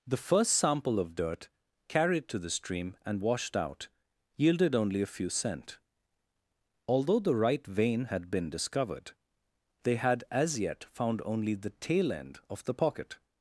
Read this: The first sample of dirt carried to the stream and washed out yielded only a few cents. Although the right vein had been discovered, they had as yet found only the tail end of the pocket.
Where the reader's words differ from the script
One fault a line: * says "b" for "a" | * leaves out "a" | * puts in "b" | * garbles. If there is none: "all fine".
* says "cent" for "cents"